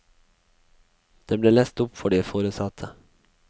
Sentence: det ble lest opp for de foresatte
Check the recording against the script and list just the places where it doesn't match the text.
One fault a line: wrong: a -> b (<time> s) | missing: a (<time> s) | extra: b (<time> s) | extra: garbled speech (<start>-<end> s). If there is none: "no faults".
no faults